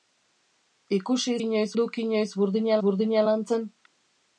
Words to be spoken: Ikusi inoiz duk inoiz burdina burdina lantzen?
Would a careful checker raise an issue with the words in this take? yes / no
no